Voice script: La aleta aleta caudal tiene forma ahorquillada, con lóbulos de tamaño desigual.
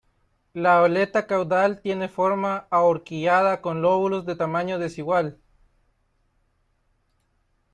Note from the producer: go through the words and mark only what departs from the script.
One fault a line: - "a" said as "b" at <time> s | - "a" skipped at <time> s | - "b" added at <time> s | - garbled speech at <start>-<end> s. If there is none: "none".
- "aleta" skipped at 1.3 s